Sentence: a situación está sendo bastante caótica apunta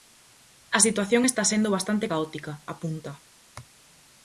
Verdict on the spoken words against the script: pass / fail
pass